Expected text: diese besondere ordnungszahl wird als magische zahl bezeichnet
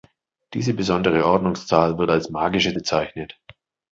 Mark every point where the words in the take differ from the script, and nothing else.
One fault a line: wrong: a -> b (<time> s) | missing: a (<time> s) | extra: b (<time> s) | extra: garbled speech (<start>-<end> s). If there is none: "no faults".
missing: zahl (2.7 s)